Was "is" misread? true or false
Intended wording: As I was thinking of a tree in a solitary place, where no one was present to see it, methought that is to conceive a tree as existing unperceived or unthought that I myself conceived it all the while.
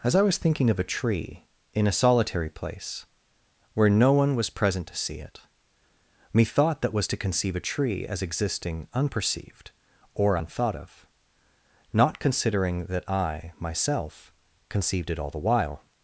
true